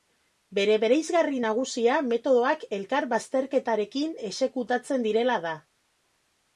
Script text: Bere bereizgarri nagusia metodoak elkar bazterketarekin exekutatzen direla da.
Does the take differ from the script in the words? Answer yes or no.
no